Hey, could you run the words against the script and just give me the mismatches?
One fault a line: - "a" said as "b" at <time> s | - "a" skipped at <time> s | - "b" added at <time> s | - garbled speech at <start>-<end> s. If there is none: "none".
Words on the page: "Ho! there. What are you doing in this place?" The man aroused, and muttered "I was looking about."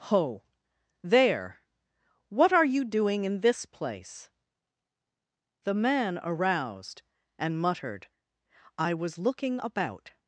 none